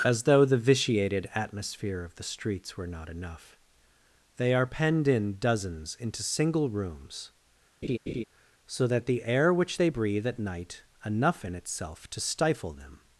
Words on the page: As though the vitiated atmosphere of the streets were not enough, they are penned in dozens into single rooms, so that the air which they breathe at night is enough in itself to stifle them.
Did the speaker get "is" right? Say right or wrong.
wrong